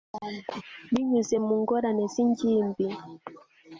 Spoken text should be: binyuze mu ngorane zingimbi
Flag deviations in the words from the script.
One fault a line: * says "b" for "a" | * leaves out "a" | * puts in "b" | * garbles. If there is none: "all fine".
all fine